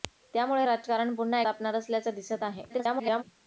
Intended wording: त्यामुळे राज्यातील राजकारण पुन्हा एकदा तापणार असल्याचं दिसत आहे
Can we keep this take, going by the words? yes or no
no